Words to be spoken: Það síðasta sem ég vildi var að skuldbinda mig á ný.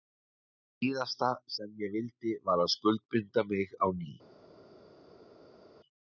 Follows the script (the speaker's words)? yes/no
yes